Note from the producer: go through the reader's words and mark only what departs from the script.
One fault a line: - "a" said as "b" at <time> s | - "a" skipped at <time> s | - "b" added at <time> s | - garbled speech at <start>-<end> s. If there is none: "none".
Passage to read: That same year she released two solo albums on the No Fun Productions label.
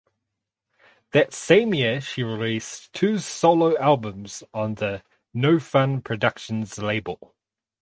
none